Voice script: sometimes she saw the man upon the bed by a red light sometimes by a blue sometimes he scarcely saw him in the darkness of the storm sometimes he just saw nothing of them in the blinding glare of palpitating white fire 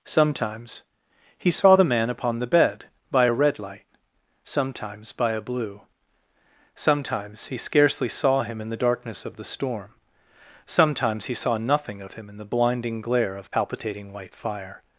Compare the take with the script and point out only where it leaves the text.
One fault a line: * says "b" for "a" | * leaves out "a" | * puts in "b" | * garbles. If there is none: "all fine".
* says "he" for "she"
* leaves out "just"
* says "him" for "them"